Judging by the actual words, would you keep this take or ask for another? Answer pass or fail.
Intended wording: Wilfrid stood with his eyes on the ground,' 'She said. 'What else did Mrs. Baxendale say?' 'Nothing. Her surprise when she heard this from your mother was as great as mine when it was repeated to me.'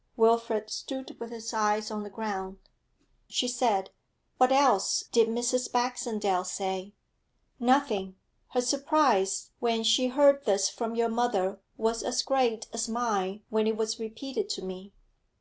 pass